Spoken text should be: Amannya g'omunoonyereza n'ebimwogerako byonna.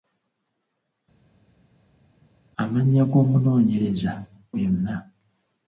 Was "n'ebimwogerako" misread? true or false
true